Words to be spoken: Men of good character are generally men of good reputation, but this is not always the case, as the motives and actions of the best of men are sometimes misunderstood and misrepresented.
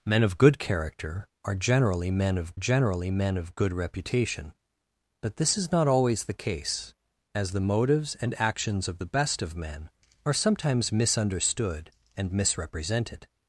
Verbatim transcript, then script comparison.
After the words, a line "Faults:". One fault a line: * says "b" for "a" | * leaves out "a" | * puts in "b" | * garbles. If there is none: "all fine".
Men of good character are generally men of generally men of good reputation, but this is not always the case, as the motives and actions of the best of men are sometimes misunderstood and misrepresented.
Faults:
* puts in "generally men of"